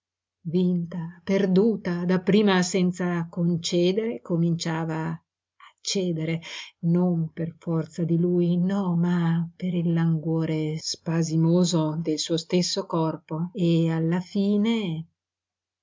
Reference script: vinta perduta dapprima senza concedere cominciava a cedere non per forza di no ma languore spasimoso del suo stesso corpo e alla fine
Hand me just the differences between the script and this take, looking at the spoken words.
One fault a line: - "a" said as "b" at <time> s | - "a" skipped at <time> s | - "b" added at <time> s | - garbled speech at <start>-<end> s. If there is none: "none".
- "lui" added at 8.2 s
- "per il" added at 9.6 s